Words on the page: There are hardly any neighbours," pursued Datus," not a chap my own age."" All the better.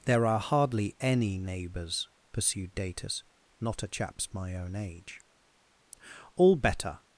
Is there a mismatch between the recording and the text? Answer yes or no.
yes